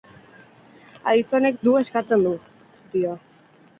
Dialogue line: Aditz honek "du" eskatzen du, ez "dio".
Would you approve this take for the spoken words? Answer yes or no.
yes